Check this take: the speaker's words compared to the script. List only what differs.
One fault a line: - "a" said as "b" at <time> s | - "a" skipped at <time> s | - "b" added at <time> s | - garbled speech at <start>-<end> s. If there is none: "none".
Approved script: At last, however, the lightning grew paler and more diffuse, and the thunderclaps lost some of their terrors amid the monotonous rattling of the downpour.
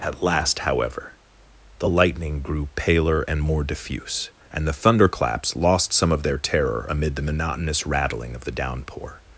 - "terrors" said as "terror" at 6.4 s